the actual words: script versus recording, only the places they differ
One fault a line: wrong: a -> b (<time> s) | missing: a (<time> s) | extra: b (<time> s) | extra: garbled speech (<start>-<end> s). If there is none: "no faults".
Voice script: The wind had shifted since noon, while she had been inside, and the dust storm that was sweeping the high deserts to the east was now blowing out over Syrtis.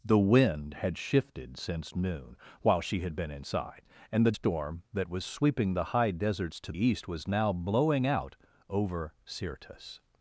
missing: dust (4.3 s)
missing: the (6.7 s)